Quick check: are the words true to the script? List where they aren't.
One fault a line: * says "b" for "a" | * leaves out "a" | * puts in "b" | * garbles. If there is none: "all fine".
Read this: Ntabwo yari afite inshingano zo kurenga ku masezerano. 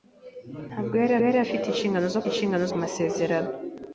* puts in "yari"
* says "inshingano" for "kurenga"